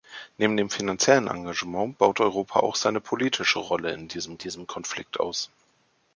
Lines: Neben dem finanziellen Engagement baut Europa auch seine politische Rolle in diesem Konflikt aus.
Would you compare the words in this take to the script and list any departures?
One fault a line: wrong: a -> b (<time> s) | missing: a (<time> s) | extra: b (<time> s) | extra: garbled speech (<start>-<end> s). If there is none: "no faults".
extra: diesem (4.4 s)